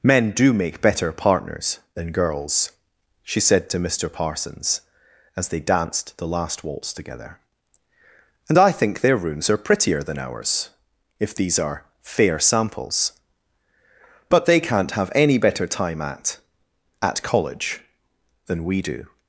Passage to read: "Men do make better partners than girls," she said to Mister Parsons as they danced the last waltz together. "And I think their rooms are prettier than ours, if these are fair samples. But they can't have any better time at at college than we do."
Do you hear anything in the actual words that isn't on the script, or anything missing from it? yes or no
no